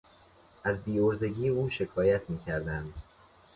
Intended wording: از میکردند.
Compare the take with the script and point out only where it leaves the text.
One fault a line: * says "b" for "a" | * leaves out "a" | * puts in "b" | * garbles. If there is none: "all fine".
* puts in "بیعرضگی او شکایت"